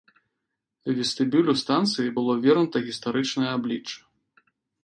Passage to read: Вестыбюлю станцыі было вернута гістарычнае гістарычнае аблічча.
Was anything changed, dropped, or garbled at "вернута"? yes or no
no